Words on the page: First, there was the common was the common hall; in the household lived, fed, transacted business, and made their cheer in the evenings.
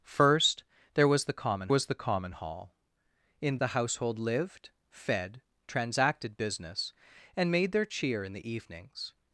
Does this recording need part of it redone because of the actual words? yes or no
no